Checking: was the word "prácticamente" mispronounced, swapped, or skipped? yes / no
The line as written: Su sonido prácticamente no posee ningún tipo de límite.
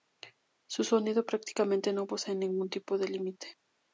no